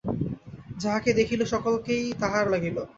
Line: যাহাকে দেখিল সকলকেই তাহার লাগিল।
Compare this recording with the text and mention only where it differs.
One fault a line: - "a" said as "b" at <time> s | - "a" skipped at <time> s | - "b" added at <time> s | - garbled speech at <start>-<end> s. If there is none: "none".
none